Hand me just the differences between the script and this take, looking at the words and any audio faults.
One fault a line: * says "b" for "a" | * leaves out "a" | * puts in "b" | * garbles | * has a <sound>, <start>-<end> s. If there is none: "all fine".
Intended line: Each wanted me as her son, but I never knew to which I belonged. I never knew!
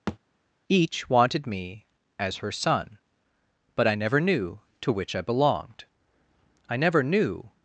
* has a thud, 0.1-0.2 s